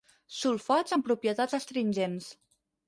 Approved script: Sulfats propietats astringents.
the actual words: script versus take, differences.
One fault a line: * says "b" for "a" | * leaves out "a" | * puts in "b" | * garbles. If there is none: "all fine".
* puts in "amb"